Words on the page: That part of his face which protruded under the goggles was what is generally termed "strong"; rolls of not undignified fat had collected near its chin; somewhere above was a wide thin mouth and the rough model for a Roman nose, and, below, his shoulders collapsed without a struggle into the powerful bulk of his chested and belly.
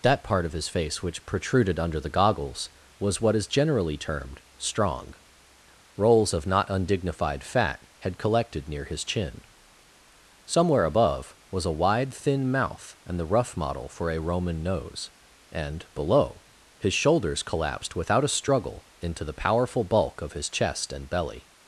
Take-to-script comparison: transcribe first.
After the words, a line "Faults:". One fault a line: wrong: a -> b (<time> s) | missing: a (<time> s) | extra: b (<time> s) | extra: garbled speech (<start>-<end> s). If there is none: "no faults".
That part of his face which protruded under the goggles was what is generally termed "strong"; rolls of not undignified fat had collected near his chin; somewhere above was a wide thin mouth and the rough model for a Roman nose, and, below, his shoulders collapsed without a struggle into the powerful bulk of his chest and belly.
Faults:
wrong: its -> his (8.8 s)
wrong: chested -> chest (20.5 s)